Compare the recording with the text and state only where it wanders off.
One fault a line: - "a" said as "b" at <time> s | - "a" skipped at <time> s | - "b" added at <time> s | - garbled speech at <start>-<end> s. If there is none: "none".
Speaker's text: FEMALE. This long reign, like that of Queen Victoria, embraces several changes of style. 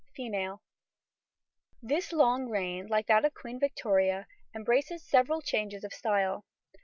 none